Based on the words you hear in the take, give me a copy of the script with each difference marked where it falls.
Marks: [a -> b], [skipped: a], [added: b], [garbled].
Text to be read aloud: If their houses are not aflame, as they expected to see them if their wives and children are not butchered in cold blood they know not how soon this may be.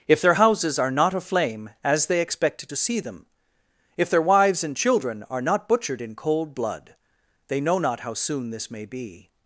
If their houses are not aflame, as they expected to see them if their wives and children are not butchered in cold blood they know not how soon this may be.